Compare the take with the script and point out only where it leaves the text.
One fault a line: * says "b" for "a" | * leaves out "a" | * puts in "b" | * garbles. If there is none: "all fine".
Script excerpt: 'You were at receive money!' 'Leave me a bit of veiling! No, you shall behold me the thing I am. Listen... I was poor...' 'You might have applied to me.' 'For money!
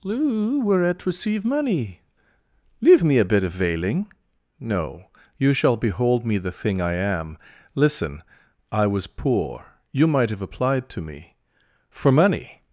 all fine